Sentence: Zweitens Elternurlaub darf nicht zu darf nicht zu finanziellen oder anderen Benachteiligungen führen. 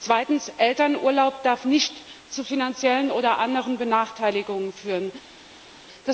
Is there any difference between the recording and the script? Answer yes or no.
yes